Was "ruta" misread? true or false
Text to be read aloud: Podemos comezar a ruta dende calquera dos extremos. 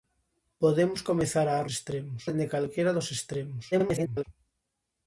true